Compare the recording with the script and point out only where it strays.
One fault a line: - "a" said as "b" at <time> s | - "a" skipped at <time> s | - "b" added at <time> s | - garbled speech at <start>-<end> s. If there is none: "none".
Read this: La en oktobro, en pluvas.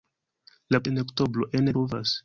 none